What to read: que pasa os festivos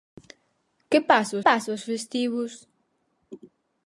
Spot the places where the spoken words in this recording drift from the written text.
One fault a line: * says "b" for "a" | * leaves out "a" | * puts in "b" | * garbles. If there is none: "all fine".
* puts in "pasa"